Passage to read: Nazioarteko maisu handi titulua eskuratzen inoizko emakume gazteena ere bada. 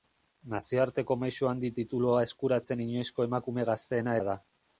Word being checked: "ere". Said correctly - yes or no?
no